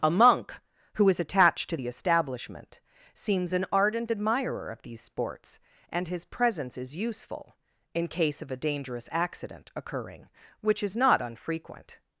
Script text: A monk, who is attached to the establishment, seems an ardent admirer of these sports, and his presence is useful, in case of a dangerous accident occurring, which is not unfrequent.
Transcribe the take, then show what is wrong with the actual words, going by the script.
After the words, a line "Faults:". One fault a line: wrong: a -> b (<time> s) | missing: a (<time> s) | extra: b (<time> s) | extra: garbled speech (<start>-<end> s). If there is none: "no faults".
A monk, who is attached to the establishment, seems an ardent admirer of these sports, and his presence is useful, in case of a dangerous accident occurring, which is not unfrequent.
Faults:
no faults